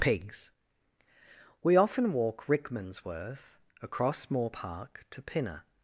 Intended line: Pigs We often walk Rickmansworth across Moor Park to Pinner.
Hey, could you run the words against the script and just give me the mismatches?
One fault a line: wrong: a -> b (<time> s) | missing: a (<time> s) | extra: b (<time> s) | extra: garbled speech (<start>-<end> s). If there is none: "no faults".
no faults